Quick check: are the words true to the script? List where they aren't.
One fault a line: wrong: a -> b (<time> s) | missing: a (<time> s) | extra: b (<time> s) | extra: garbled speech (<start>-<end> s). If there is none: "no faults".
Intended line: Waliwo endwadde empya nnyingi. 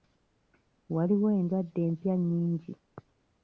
no faults